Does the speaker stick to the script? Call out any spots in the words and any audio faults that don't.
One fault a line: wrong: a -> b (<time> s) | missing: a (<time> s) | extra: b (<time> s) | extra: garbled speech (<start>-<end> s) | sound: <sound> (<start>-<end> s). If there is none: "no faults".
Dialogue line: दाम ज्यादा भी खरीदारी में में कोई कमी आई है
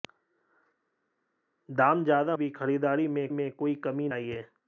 no faults